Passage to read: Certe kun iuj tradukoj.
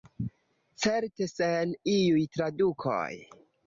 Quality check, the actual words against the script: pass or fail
fail